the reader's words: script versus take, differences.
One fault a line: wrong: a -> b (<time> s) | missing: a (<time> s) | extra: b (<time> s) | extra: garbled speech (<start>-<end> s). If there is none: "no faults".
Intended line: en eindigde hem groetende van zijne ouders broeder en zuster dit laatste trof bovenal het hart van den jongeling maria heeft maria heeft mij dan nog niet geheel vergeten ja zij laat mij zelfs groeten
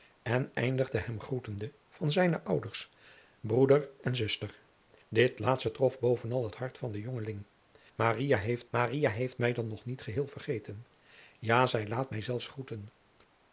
no faults